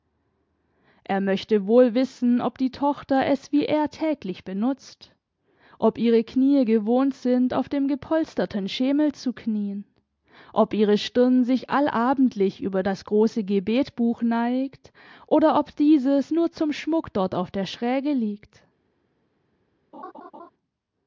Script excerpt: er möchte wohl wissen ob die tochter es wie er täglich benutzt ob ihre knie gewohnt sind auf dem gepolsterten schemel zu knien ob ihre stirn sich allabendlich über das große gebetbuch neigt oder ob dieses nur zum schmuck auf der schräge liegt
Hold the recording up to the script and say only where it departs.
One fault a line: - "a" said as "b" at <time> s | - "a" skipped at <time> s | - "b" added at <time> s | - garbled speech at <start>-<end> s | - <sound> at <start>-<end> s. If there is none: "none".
- "dort" added at 17.1 s
- laugh at 19.9-20.5 s